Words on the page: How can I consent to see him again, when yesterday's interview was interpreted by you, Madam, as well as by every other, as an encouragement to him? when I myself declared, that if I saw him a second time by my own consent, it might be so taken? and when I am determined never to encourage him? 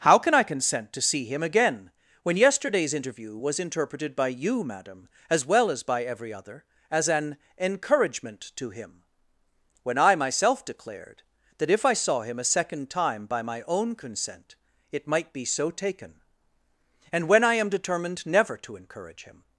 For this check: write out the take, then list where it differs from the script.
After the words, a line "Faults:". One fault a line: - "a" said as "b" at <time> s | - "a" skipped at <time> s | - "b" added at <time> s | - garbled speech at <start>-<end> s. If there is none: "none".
How can I consent to see him again, when yesterday's interview was interpreted by you, Madam, as well as by every other, as an encouragement to him? when I myself declared, that if I saw him a second time by my own consent, it might be so taken? and when I am determined never to encourage him?
Faults:
none